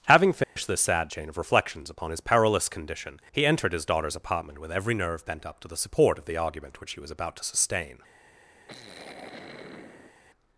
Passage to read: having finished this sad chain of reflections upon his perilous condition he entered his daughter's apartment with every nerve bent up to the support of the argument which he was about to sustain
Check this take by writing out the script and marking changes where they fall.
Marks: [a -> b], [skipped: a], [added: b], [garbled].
having finished this sad chain of reflections upon his perilous condition he entered his daughter's apartment with every nerve bent up to the support of the argument which he was about to sustain